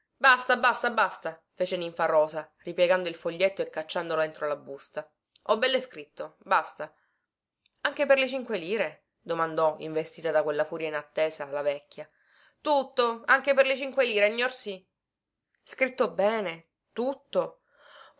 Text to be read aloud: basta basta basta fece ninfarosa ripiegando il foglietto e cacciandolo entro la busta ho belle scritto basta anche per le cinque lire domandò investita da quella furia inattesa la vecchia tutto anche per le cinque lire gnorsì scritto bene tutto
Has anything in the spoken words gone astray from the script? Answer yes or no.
no